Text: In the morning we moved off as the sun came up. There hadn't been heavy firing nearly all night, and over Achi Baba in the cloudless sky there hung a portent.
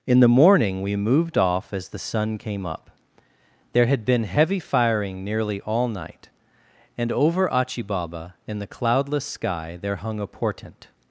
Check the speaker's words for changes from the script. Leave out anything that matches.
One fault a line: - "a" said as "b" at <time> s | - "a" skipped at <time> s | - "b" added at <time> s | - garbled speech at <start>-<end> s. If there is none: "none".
- "hadn't" said as "had" at 3.9 s